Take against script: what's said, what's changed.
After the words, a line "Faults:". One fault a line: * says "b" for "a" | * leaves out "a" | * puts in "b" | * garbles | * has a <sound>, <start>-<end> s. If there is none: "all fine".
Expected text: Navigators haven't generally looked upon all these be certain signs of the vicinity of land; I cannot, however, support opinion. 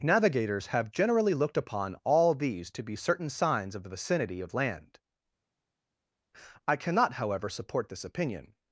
Navigators have generally looked upon all these to be certain signs of the vicinity of land; I cannot, however, support this opinion.
Faults:
* says "have" for "haven't"
* puts in "to"
* puts in "this"